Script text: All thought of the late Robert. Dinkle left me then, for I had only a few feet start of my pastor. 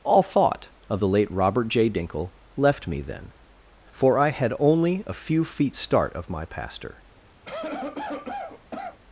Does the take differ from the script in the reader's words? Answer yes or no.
yes